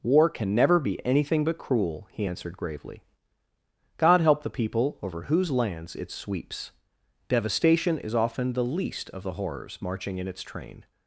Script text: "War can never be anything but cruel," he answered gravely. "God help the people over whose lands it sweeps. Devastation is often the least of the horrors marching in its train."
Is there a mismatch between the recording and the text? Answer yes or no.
no